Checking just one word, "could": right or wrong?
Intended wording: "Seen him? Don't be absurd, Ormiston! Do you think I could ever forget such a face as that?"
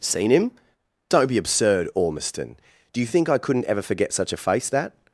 wrong